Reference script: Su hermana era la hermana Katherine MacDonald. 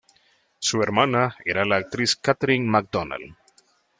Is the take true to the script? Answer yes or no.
no